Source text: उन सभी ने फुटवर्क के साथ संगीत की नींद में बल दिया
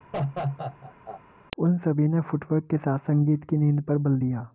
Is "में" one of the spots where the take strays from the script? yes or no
yes